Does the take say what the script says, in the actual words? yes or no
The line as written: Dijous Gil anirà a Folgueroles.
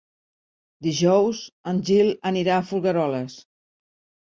no